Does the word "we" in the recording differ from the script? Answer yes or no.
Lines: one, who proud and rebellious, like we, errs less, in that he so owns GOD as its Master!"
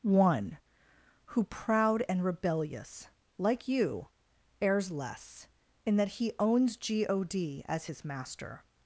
yes